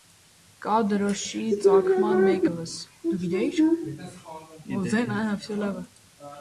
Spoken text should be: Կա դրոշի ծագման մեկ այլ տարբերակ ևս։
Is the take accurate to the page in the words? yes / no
no